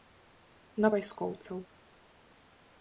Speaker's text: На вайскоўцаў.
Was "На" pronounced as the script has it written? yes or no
yes